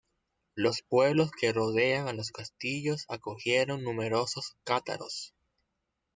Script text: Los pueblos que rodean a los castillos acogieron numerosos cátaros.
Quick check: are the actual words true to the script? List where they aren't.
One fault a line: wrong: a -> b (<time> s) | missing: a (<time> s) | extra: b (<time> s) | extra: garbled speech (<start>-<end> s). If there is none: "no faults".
no faults